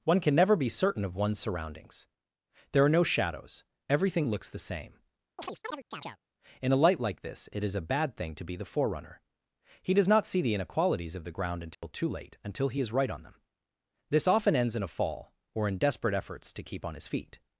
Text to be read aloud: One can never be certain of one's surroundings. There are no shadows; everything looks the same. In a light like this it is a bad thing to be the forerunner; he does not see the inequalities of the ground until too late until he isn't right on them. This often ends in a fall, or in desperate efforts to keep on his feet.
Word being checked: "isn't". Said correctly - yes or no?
no